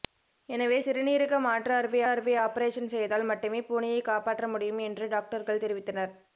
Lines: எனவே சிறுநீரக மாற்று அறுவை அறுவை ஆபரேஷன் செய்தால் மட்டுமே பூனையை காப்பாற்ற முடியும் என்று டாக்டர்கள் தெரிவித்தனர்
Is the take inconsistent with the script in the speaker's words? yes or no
no